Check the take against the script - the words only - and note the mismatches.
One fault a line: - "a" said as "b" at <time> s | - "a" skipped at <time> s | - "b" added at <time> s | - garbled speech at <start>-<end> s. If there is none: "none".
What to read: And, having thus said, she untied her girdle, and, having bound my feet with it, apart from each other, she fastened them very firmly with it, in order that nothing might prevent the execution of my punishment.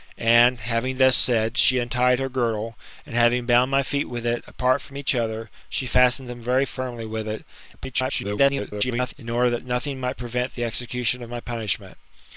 - garbled speech at 7.7-9.1 s